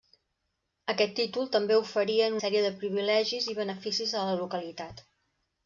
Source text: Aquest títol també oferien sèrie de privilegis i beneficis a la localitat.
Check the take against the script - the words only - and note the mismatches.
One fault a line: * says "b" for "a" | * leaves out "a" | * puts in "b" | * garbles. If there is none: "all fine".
all fine